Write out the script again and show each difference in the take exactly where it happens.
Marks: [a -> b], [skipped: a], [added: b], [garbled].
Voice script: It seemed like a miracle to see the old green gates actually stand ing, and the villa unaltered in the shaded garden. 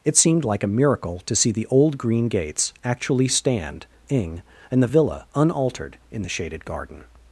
It seemed like a miracle to see the old green gates actually stand ing, and the villa unaltered in the shaded garden.